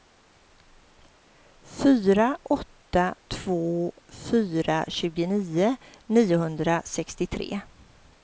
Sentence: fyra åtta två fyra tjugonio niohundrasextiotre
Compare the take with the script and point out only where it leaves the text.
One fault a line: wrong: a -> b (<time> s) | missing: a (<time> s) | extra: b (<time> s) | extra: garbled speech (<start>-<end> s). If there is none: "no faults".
no faults